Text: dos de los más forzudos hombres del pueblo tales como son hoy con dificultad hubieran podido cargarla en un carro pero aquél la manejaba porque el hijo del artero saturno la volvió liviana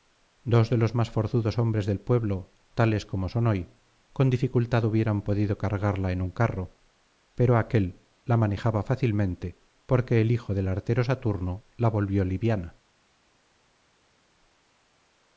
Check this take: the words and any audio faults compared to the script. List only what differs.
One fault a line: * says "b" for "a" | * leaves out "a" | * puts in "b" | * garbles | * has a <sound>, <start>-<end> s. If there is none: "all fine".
* puts in "fácilmente"